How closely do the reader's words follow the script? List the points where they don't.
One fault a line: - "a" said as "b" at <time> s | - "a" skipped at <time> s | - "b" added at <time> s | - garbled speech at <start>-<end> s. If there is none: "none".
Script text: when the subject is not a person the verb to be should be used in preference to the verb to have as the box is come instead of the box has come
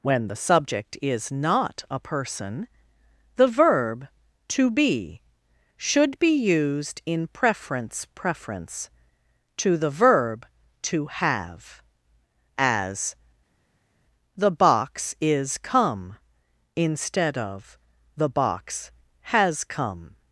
- "preference" added at 8.1 s